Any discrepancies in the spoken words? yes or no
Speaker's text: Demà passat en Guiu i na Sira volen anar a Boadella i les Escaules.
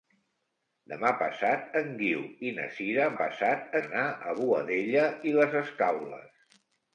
yes